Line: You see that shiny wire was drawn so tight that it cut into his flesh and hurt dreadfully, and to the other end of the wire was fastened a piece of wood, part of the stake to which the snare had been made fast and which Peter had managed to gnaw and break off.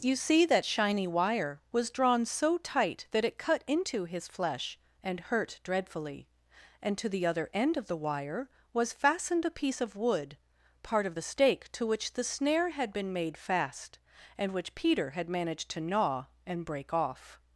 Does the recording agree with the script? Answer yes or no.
yes